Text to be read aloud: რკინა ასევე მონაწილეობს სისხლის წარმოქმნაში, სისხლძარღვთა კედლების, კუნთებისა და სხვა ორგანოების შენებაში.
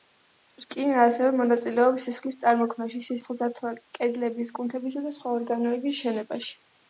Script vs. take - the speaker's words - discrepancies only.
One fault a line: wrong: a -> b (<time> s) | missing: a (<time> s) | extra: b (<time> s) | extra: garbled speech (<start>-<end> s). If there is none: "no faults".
no faults